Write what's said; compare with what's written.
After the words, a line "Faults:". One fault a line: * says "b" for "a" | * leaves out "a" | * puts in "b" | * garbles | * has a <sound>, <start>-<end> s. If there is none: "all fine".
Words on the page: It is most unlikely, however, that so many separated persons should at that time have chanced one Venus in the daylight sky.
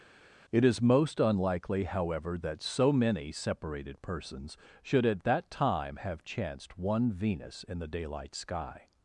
It is most unlikely, however, that so many separated persons should at that time have chanced one Venus in the daylight sky.
Faults:
all fine